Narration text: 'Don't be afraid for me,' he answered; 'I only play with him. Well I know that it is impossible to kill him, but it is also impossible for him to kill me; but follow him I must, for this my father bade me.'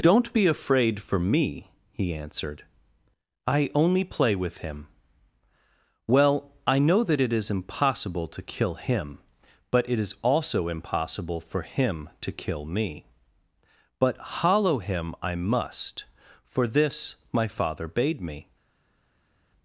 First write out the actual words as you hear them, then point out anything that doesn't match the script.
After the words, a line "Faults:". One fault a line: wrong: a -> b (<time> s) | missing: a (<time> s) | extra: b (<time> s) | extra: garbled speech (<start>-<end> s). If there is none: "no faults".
'Don't be afraid for me,' he answered; 'I only play with him. Well I know that it is impossible to kill him, but it is also impossible for him to kill me; but hollow him I must, for this my father bade me.'
Faults:
wrong: follow -> hollow (14.2 s)